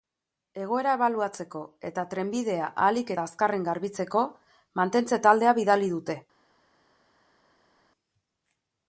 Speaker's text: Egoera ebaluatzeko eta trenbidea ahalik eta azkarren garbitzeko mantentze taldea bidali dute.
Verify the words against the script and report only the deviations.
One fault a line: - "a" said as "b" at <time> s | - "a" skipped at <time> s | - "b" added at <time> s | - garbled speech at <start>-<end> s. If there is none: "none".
none